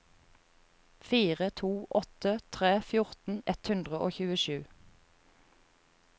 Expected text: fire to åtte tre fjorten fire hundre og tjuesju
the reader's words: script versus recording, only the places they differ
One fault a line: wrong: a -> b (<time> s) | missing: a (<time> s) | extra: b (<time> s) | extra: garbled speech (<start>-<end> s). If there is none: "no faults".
wrong: fire -> ett (3.5 s)